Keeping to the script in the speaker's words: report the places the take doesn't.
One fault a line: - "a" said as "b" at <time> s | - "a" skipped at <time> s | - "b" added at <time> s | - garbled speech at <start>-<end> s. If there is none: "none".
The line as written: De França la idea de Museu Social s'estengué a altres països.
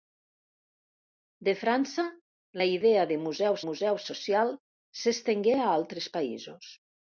- "Museu" added at 3.7 s